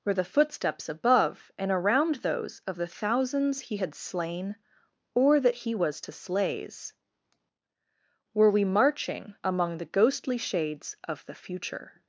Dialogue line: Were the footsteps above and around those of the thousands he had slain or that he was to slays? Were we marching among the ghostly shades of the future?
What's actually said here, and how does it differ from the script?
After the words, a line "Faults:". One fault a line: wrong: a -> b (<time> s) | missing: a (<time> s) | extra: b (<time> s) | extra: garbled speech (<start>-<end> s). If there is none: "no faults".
Were the footsteps above and around those of the thousands he had slain or that he was to slays? Were we marching among the ghostly shades of the future?
Faults:
no faults